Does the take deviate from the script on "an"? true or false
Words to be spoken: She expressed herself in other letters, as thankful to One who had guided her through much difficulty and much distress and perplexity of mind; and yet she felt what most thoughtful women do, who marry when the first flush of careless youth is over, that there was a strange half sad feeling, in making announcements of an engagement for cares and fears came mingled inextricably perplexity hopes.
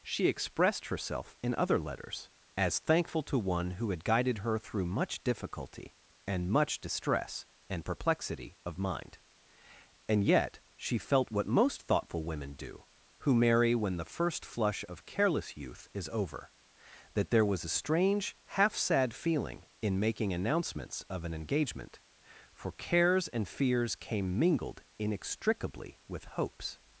false